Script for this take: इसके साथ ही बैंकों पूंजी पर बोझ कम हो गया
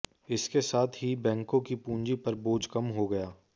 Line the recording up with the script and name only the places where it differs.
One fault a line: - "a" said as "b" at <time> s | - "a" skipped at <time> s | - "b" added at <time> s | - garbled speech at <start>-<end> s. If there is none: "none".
- "की" added at 1.6 s